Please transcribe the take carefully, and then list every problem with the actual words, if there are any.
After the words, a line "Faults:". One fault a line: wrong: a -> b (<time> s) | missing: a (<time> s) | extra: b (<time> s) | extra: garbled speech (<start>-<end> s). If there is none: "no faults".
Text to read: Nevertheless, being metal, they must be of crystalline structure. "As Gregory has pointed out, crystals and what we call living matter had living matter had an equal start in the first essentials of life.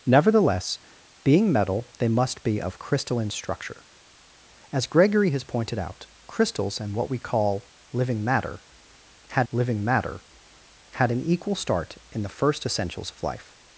Nevertheless, being metal, they must be of crystalline structure. "As Gregory has pointed out, crystals and what we call living matter had living matter had an equal start in the first essentials of life.
Faults:
no faults